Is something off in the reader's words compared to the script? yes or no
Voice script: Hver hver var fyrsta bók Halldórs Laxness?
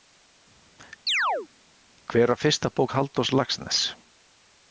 yes